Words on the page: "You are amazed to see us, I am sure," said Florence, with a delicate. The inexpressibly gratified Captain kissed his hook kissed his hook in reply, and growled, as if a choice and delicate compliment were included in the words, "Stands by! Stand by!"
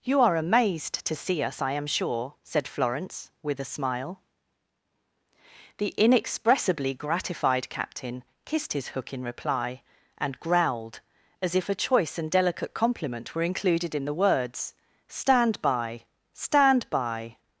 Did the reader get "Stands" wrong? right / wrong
wrong